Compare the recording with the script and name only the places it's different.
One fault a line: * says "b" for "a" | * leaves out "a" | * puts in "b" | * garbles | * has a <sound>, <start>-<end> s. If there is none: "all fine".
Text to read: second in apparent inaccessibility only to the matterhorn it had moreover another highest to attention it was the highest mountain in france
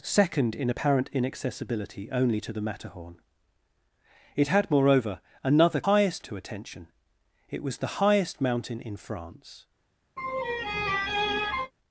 * has a laugh, 10.2-11.7 s